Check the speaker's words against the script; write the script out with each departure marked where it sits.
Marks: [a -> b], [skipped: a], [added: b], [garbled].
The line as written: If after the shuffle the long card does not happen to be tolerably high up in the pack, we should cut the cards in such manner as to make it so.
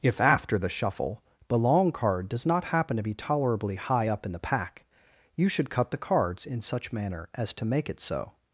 If after the shuffle the long card does not happen to be tolerably high up in the pack, [we -> you] should cut the cards in such manner as to make it so.